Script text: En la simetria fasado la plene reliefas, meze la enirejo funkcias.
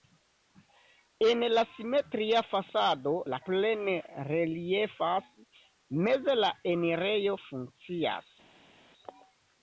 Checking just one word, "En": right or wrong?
right